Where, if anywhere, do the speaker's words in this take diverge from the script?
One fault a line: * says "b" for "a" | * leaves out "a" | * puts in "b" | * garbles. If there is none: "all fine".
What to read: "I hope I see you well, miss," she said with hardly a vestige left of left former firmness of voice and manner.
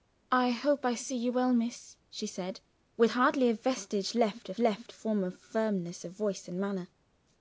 all fine